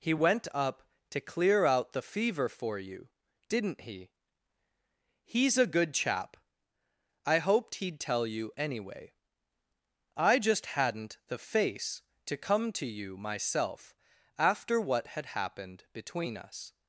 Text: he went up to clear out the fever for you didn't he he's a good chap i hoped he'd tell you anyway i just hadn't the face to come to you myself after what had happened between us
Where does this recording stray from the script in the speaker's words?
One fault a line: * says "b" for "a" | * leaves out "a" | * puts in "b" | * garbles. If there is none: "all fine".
all fine